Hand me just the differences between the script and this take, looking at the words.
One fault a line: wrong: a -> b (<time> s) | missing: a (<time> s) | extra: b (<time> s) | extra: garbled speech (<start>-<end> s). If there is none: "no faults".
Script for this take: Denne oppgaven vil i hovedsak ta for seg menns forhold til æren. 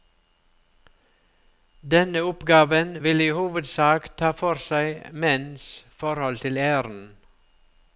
no faults